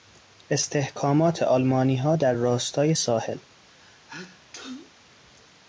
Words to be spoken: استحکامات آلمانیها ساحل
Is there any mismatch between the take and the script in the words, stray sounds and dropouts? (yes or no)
yes